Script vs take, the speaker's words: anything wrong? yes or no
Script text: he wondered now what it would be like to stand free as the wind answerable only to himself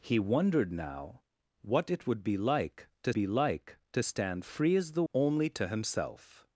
yes